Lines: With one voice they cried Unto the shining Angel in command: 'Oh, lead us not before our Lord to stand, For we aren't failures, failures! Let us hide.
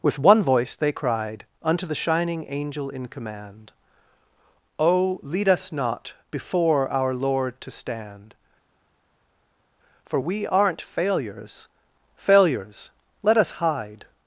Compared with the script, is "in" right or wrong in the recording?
right